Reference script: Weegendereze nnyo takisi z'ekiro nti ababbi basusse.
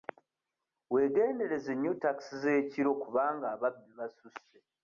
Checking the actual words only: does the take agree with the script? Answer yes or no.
no